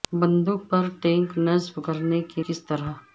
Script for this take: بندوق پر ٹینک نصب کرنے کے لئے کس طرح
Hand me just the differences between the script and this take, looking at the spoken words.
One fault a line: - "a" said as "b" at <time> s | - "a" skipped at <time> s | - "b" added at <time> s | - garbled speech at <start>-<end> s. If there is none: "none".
- "لئے" skipped at 2.4 s